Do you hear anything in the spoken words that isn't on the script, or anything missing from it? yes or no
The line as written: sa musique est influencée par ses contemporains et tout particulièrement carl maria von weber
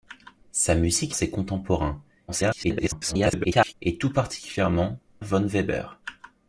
yes